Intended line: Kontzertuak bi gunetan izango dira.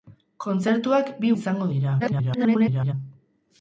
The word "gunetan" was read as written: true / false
false